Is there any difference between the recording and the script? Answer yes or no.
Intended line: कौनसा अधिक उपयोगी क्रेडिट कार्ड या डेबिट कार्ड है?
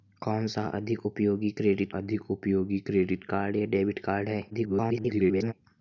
yes